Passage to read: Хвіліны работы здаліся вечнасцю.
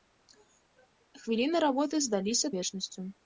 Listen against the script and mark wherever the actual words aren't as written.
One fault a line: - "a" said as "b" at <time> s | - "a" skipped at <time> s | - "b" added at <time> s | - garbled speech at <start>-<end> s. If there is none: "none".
none